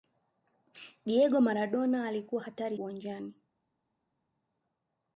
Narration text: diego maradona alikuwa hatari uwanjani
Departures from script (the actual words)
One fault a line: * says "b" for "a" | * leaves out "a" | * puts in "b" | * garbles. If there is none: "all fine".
all fine